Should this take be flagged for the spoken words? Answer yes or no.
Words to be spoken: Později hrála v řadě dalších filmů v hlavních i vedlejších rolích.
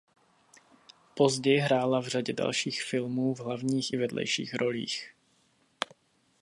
no